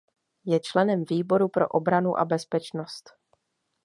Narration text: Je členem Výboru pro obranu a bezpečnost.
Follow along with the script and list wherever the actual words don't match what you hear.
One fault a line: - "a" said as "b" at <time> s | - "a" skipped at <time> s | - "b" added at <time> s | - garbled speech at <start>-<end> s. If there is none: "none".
none